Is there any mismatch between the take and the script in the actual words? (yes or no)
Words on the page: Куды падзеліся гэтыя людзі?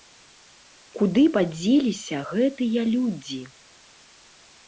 no